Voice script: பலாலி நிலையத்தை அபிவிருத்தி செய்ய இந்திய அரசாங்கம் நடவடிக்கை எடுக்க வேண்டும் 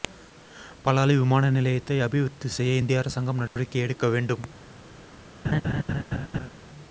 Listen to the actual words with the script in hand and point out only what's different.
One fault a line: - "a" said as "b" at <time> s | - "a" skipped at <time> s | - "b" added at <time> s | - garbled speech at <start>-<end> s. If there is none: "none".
- "விமான" added at 1.2 s